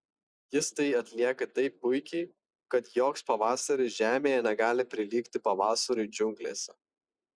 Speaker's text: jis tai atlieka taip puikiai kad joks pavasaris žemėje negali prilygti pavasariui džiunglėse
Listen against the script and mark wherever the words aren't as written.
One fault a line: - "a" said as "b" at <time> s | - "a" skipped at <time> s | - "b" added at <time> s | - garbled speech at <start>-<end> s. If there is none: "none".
none